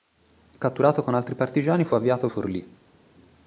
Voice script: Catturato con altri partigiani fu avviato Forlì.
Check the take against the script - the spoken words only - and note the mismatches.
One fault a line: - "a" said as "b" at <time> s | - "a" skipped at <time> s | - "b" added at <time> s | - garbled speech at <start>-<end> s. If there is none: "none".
none